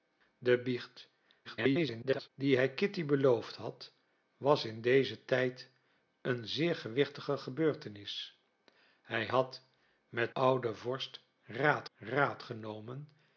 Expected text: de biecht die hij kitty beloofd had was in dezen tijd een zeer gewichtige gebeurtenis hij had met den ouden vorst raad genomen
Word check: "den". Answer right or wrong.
wrong